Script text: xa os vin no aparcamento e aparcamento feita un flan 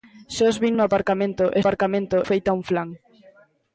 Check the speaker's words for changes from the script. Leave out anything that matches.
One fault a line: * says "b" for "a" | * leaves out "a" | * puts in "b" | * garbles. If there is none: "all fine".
all fine